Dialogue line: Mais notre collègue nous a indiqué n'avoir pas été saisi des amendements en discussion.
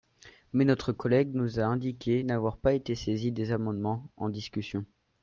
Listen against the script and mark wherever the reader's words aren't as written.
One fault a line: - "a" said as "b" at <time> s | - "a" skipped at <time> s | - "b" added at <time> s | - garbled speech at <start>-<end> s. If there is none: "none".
none